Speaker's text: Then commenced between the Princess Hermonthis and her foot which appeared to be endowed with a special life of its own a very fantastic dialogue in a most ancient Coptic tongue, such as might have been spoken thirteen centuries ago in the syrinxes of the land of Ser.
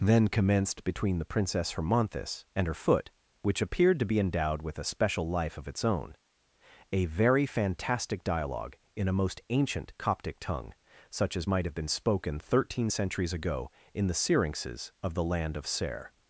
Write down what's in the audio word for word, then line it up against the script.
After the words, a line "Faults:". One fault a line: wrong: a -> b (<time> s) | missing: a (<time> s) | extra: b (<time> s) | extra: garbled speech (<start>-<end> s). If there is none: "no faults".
Then commenced between the Princess Hermonthis and her foot which appeared to be endowed with a special life of its own a very fantastic dialogue in a most ancient Coptic tongue, such as might have been spoken thirteen centuries ago in the syrinxes of the land of Ser.
Faults:
no faults